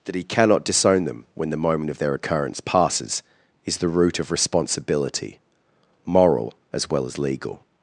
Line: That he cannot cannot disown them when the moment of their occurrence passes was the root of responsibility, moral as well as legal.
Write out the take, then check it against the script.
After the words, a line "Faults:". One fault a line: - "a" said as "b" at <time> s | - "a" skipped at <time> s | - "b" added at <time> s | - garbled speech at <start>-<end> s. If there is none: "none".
That he cannot disown them when the moment of their occurrence passes is the root of responsibility, moral as well as legal.
Faults:
- "cannot" skipped at 0.6 s
- "was" said as "is" at 3.6 s